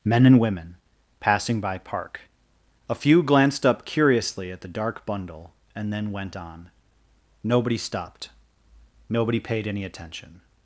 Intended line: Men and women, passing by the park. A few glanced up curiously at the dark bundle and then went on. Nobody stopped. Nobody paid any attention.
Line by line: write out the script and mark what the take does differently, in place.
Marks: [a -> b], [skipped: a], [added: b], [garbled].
Men and women, passing by [skipped: the] park. A few glanced up curiously at the dark bundle and then went on. Nobody stopped. Nobody paid any attention.